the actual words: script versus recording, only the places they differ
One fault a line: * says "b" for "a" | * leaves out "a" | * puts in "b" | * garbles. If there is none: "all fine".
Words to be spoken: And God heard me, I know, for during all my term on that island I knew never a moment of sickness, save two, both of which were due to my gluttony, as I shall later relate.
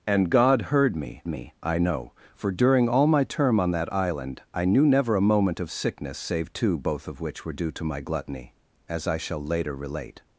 * puts in "me"